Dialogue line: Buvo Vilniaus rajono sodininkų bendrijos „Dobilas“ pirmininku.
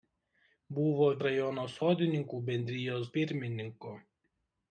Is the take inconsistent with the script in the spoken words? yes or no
yes